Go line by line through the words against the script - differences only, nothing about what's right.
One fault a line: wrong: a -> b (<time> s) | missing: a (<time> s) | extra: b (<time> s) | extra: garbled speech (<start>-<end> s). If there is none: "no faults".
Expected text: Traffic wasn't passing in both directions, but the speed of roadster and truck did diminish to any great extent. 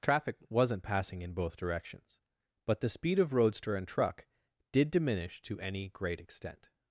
no faults